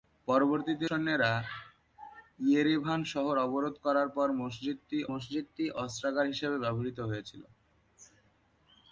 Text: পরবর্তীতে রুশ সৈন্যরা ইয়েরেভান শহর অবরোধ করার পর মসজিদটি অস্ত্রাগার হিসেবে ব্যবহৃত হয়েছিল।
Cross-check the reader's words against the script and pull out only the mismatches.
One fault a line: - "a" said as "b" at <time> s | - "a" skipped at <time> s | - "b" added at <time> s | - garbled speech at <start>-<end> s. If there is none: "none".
- "রুশ" skipped at 0.9 s
- "মসজিদটি" added at 5.1 s